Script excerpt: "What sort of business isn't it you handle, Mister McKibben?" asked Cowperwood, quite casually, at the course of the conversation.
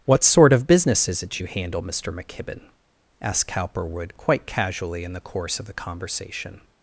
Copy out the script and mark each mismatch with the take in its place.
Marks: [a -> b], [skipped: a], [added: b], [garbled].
"What sort of business [isn't -> is] it you handle, Mister McKibben?" asked Cowperwood, quite casually, [at -> in] the course of the conversation.